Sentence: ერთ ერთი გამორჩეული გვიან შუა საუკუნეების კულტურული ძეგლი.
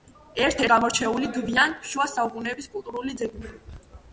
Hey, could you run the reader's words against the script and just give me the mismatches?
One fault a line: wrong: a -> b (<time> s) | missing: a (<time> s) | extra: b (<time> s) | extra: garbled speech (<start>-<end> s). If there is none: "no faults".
missing: ერთი (0.6 s)